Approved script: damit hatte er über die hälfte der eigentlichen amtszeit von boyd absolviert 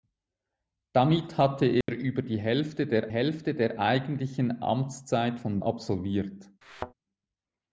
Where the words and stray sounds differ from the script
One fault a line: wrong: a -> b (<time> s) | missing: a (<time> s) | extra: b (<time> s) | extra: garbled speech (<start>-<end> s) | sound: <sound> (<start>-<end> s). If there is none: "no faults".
sound: dropout (1.8-1.9 s)
extra: hälfte der (3.1 s)
missing: boyd (5.6 s)
sound: thud (6.6-6.9 s)